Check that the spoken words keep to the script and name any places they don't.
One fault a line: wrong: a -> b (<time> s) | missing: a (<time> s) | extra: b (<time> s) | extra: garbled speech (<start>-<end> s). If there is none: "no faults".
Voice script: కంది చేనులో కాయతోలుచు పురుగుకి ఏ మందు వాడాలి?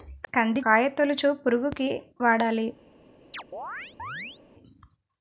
missing: చేనులో (0.6 s)
missing: ఏ మందు (1.9 s)